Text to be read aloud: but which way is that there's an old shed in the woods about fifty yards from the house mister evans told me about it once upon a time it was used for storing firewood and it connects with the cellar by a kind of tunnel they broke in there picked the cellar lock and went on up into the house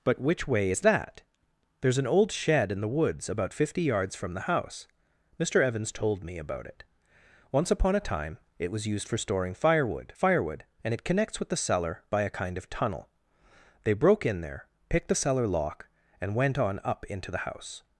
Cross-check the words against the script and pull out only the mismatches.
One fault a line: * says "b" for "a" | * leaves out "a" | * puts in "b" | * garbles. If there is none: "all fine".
* puts in "firewood"